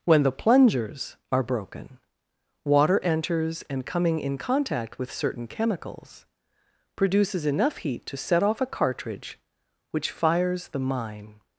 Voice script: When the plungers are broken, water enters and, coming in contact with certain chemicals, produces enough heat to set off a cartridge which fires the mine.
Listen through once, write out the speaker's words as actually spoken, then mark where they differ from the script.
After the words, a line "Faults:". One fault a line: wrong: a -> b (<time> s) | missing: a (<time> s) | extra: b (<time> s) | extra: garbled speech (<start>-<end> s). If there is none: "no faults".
When the plungers are broken, water enters and, coming in contact with certain chemicals, produces enough heat to set off a cartridge which fires the mine.
Faults:
no faults